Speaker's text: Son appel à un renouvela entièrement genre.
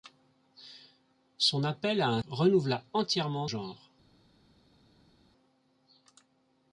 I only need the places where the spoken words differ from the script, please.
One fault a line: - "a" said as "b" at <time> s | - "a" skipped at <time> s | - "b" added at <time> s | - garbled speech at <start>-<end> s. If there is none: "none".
none